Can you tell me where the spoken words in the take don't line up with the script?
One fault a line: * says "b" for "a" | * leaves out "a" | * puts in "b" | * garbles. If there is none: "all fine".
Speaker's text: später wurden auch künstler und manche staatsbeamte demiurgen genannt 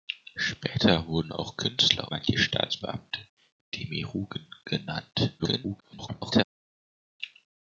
* leaves out "und"
* garbles